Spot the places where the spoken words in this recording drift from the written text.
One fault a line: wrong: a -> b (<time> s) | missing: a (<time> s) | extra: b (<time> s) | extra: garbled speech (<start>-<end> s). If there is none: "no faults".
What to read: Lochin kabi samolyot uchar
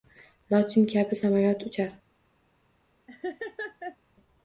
no faults